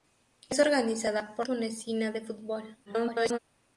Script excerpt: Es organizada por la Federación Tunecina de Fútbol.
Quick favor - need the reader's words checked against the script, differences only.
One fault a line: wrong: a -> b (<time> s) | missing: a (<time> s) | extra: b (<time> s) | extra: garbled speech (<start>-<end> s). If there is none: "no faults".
missing: la Federación (1.4 s)
extra: garbled speech (2.9-3.4 s)